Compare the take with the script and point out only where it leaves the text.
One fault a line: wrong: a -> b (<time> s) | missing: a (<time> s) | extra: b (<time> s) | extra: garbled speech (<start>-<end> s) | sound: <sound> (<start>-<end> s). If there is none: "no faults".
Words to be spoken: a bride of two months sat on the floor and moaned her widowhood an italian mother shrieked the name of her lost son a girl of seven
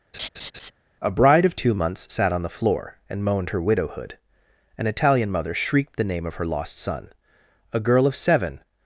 sound: laugh (0.1-0.7 s)